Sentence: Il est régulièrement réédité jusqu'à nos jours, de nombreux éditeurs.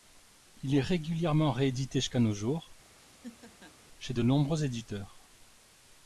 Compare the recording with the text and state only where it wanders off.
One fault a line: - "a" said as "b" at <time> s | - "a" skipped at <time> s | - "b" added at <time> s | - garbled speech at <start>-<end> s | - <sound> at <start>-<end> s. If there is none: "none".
- laugh at 2.9-3.8 s
- "chez" added at 4.0 s